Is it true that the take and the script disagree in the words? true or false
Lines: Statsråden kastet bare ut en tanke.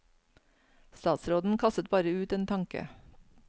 false